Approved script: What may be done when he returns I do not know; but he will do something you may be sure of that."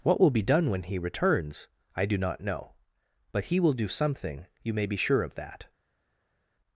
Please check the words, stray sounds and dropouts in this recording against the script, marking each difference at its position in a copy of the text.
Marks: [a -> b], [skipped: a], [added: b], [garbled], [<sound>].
What [may -> will] be done when he returns I do not know; but he will do something you may be sure of that."